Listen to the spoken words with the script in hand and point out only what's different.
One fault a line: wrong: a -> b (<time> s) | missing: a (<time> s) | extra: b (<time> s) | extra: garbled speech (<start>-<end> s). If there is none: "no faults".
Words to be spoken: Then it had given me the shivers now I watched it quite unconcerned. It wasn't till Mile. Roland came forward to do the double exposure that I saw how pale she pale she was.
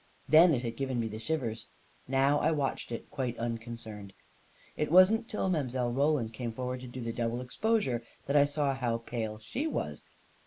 missing: pale she (9.7 s)